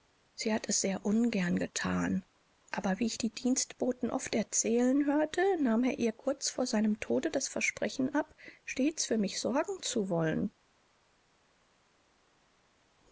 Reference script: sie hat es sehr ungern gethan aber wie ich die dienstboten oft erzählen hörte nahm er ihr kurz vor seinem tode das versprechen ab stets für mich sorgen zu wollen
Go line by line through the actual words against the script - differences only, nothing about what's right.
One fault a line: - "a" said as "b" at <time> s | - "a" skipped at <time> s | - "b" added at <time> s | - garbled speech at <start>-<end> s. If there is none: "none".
none